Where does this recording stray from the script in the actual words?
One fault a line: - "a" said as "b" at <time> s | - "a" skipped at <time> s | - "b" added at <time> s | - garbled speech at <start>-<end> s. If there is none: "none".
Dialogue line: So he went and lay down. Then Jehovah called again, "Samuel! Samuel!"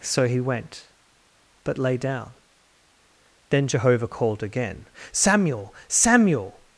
- "and" said as "but" at 1.6 s